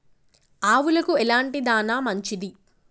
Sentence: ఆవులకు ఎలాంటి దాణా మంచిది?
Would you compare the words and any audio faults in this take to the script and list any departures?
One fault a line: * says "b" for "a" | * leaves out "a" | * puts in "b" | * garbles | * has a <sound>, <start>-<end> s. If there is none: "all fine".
all fine